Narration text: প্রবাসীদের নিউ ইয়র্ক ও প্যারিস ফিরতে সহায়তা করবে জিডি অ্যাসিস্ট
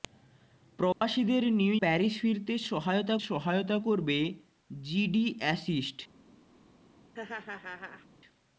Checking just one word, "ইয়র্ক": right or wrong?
wrong